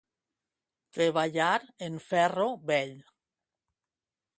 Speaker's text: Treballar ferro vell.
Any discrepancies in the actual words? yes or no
yes